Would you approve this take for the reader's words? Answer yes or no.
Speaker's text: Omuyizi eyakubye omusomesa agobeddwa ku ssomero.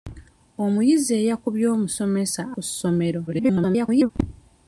no